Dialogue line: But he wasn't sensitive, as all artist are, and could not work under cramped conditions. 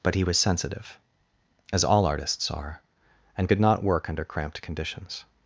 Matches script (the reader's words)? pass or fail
fail